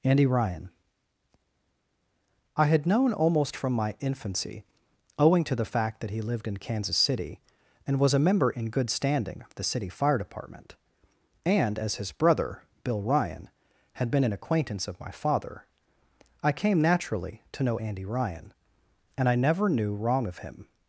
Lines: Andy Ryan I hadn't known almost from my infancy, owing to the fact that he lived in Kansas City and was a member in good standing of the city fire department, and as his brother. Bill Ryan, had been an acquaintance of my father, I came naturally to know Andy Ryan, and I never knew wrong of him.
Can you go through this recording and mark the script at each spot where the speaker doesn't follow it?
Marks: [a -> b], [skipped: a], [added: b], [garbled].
Andy Ryan I [hadn't -> had] known almost from my infancy, owing to the fact that he lived in Kansas City and was a member in good standing of the city fire department, and as his brother. Bill Ryan, had been an acquaintance of my father, I came naturally to know Andy Ryan, and I never knew wrong of him.